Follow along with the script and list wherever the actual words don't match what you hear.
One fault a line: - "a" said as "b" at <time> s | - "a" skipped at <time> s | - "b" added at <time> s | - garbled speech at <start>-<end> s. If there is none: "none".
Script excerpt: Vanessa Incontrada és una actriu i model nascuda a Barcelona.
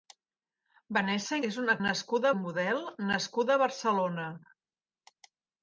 - "Incontrada" skipped at 1.4 s
- "actriu" said as "nascuda" at 1.9 s